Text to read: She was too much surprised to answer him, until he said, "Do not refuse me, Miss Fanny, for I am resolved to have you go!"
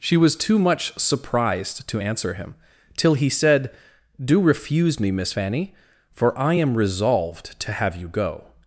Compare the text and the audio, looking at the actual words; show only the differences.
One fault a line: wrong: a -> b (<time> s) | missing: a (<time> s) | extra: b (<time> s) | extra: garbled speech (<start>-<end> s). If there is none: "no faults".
wrong: until -> till (3.0 s)
missing: not (4.4 s)